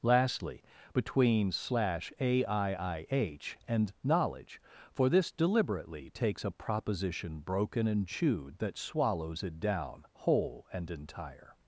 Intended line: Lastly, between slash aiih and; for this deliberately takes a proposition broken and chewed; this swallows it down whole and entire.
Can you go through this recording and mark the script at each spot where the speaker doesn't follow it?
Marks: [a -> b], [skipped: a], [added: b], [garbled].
Lastly, between slash aiih and; [added: knowledge] for this deliberately takes a proposition broken and chewed; [this -> that] swallows it down whole and entire.